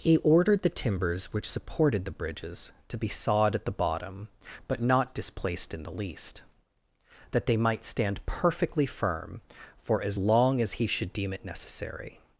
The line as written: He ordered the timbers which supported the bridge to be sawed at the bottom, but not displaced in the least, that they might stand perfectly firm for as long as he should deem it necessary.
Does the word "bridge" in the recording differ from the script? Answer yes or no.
yes